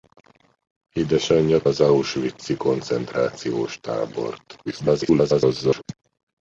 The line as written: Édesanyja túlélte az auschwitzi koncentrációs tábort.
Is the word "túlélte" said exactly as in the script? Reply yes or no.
no